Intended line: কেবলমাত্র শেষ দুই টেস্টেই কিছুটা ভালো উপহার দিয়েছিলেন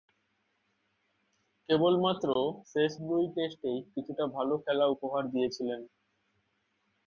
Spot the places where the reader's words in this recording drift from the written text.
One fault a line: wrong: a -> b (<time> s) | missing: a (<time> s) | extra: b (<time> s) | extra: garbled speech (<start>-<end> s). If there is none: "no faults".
extra: খেলা (4.6 s)